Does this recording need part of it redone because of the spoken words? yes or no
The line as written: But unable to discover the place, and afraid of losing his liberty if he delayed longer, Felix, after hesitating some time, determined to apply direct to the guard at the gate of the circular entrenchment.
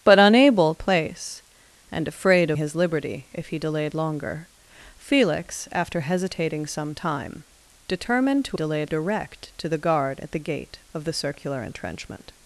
yes